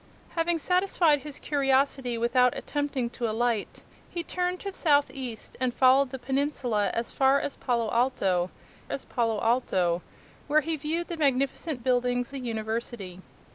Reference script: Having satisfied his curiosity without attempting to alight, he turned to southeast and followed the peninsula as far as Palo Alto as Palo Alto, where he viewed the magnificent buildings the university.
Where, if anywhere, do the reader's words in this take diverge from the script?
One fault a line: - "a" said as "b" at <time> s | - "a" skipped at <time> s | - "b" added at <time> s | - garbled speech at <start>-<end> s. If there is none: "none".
none